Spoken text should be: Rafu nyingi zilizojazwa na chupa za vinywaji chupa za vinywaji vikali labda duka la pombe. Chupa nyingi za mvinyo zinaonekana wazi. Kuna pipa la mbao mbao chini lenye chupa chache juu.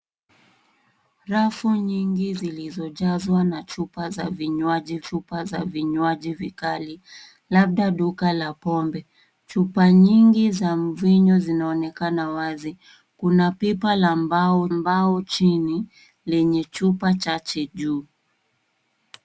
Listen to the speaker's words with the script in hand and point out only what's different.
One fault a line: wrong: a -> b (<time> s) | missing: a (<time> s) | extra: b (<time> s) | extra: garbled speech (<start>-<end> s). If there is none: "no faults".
no faults